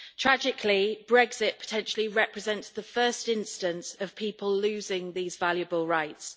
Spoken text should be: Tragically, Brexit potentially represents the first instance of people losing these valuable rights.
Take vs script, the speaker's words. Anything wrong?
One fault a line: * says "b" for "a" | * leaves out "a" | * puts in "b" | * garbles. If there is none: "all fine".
all fine